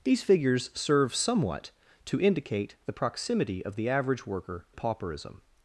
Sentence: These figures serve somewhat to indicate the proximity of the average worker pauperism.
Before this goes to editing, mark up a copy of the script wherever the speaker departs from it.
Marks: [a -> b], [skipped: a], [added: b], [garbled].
These figures serve somewhat to indicate the proximity of the average worker pauperism.